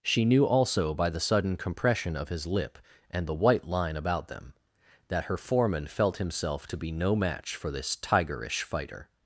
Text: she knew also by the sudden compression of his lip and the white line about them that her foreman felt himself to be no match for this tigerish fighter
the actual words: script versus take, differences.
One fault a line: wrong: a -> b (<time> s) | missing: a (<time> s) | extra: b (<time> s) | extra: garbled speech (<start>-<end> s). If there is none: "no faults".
no faults